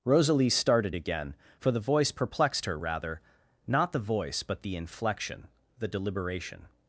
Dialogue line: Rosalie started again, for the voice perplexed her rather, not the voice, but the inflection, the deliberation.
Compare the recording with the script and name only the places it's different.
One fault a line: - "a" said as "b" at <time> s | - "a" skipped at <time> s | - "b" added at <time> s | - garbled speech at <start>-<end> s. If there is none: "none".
none